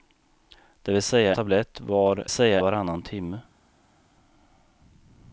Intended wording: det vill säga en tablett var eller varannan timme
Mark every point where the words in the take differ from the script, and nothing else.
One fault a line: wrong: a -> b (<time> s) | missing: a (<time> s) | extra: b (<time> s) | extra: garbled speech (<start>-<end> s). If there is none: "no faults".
missing: en (1.4 s)
wrong: eller -> säga (2.3 s)